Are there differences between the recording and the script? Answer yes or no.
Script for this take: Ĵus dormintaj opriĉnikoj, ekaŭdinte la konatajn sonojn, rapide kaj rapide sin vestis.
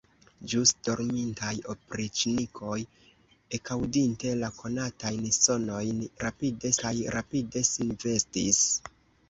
no